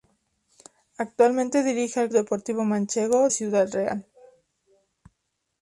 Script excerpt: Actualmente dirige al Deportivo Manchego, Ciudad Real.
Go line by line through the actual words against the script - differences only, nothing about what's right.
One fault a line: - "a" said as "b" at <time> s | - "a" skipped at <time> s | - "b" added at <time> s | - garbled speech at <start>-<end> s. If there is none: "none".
none